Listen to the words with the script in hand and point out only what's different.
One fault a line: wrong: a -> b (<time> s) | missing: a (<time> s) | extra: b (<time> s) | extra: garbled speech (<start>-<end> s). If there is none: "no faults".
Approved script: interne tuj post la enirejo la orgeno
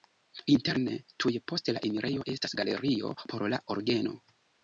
extra: estas galerio por (2.4 s)